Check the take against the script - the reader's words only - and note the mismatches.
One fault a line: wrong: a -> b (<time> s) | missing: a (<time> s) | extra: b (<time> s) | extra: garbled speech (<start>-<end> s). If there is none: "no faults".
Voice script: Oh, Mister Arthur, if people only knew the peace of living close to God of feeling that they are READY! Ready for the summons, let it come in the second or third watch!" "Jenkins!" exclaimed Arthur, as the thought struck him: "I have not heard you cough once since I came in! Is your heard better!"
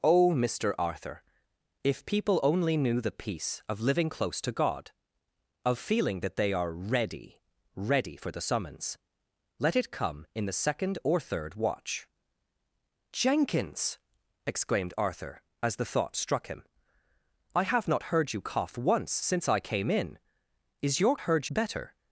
no faults